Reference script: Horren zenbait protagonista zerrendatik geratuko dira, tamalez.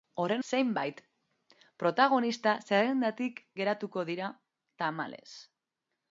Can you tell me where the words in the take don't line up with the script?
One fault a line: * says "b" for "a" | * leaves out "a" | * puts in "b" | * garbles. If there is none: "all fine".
all fine